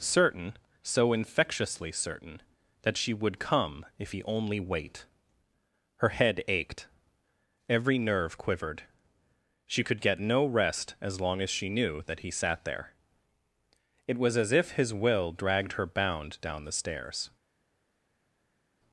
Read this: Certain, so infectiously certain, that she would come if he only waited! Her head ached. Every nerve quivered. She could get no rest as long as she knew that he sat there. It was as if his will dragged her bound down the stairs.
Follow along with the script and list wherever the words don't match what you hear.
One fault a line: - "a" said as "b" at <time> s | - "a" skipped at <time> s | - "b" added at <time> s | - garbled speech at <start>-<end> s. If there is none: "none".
- "waited" said as "wait" at 4.6 s